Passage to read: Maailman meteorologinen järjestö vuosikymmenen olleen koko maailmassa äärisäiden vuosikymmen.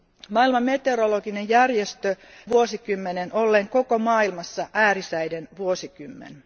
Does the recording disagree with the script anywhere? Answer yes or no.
no